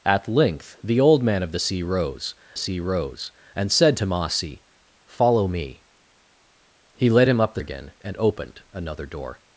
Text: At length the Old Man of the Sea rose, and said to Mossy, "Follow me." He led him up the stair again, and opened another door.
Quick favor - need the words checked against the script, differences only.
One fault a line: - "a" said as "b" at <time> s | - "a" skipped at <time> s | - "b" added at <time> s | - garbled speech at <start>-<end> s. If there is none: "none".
- "Sea rose" added at 2.6 s
- "stair" skipped at 7.6 s